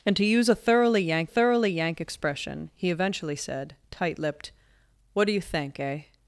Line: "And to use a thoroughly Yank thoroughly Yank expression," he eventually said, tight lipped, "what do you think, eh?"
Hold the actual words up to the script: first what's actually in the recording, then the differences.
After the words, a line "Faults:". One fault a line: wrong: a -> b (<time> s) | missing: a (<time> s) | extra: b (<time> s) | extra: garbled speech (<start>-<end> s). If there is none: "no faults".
"And to use a thoroughly Yank thoroughly Yank expression," he eventually said, tight lipped, "what do you think, eh?"
Faults:
no faults